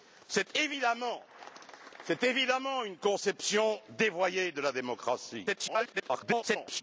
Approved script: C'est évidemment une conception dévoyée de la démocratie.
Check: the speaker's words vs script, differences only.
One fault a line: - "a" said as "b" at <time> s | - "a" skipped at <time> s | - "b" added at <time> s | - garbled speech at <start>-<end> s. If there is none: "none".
- garbled speech at 5.5-6.8 s